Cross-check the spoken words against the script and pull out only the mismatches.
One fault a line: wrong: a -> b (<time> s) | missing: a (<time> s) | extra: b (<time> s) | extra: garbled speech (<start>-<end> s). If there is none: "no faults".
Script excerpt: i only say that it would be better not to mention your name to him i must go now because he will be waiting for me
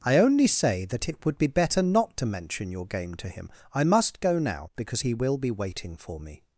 wrong: name -> game (2.9 s)